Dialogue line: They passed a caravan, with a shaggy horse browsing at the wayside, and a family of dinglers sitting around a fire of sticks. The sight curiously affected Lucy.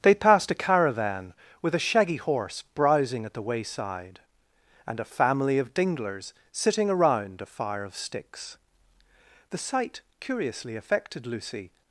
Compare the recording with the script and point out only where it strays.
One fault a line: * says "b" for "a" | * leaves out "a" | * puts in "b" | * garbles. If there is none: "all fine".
all fine